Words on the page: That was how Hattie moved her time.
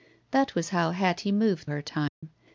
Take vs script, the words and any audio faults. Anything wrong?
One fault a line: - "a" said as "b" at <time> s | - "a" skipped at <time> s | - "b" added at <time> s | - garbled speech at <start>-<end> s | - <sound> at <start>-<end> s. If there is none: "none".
- dropout at 2.1-2.2 s